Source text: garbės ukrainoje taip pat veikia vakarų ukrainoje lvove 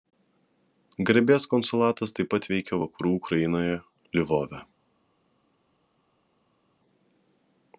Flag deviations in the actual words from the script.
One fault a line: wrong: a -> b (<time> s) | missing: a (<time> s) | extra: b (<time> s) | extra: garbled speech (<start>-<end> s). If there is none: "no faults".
wrong: ukrainoje -> konsulatas (1.5 s)